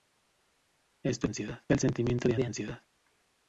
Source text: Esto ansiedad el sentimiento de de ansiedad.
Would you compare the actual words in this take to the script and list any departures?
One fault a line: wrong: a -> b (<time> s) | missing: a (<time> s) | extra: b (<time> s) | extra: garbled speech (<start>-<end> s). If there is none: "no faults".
no faults